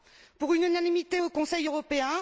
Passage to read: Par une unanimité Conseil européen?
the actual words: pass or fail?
fail